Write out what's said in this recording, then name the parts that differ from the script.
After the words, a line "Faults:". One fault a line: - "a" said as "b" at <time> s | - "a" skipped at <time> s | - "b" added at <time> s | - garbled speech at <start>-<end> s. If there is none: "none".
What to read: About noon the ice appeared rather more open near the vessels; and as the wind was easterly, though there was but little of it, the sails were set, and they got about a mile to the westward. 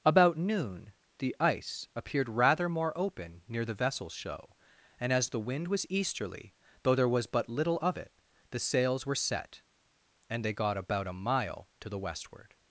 About noon the ice appeared rather more open near the vessels; show and as the wind was easterly, though there was but little of it, the sails were set, and they got about a mile to the westward.
Faults:
- "show" added at 4.1 s